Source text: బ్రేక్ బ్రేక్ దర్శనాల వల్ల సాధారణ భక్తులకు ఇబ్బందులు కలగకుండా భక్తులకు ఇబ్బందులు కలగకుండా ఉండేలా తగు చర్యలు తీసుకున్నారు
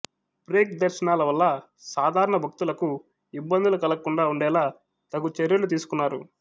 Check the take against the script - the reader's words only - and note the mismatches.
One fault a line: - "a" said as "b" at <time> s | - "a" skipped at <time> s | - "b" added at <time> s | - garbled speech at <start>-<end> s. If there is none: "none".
- "బ్రేక్" skipped at 0.7 s
- "భక్తులకు ఇబ్బందులు కలగకుండా" skipped at 4.2 s